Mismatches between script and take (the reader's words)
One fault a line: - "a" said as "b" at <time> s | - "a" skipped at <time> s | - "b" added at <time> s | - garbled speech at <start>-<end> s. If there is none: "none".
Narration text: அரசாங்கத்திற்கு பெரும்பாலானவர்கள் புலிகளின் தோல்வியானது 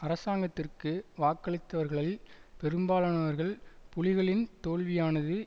- "வாக்களித்தவர்களில்" added at 1.2 s